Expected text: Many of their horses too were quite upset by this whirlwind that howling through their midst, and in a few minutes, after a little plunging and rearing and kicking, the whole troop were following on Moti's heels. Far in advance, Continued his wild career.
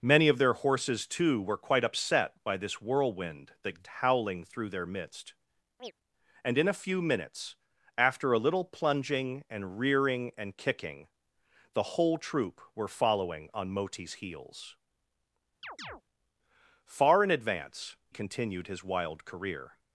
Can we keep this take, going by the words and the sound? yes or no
no